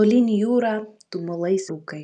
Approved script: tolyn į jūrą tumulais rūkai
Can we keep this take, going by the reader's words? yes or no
yes